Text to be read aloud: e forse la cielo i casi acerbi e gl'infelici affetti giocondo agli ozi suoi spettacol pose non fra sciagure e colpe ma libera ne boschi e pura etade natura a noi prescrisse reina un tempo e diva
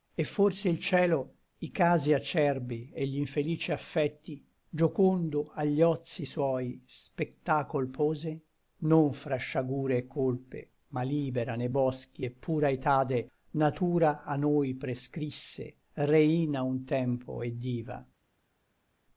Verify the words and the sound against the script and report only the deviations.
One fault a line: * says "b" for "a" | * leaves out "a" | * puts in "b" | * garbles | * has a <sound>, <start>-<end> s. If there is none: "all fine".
* says "il" for "la"